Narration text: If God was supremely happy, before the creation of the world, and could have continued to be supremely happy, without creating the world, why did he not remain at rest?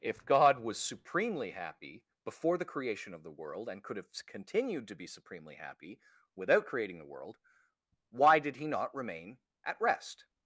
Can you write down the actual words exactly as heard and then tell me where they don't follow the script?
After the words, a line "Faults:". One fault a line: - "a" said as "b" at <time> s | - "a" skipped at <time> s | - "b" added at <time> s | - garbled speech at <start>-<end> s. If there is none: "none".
If God was supremely happy, before the creation of the world, and could have continued to be supremely happy, without creating the world, why did he not remain at rest?
Faults:
none